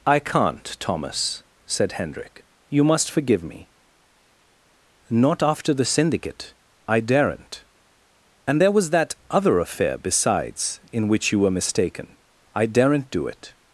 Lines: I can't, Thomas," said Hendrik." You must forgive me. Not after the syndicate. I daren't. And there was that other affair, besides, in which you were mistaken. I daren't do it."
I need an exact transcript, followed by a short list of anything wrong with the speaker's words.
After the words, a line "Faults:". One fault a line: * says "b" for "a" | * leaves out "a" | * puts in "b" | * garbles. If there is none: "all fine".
I can't, Thomas," said Hendrik." You must forgive me. Not after the syndicate. I daren't. And there was that other affair, besides, in which you were mistaken. I daren't do it."
Faults:
all fine